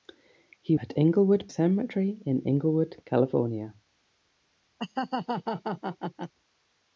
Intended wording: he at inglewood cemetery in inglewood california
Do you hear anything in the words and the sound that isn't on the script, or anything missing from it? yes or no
yes